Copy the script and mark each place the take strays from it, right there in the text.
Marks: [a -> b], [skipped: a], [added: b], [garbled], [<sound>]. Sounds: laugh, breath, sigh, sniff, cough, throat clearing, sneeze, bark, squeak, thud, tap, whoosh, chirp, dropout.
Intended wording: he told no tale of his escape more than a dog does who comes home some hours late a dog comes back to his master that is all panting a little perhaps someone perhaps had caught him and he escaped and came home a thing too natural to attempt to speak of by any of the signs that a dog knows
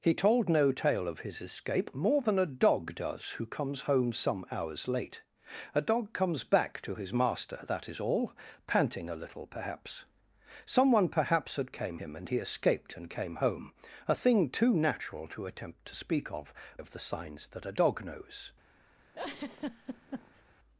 he told no tale of his escape more than a dog does who comes home some hours late a dog comes back to his master that is all panting a little perhaps someone perhaps had [caught -> came] him and he escaped and came home a thing too natural to attempt to speak of [skipped: by any] of the signs that a dog knows [laugh]